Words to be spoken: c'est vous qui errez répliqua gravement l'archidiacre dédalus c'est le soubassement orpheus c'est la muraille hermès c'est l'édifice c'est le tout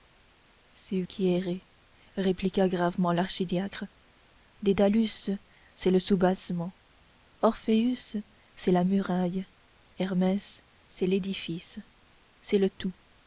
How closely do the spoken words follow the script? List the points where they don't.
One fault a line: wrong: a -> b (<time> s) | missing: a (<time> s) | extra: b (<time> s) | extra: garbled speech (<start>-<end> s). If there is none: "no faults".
missing: vous (1.0 s)